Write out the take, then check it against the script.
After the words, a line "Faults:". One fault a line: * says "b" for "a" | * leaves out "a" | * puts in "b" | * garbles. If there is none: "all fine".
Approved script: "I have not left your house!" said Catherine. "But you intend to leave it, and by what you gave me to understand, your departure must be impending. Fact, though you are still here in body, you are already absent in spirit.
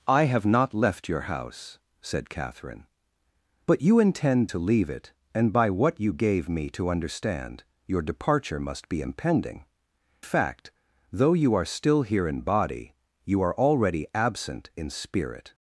"I have not left your house!" said Catherine. "But you intend to leave it, and by what you gave me to understand, your departure must be impending. Fact, though you are still here in body, you are already absent in spirit.
Faults:
all fine